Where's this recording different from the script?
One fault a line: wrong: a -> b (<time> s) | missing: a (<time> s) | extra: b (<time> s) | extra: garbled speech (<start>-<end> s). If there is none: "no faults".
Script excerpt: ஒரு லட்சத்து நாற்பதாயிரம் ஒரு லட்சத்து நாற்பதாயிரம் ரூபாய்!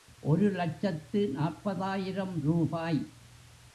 missing: ஒரு லட்சத்து நாற்பதாயிரம் (2.4 s)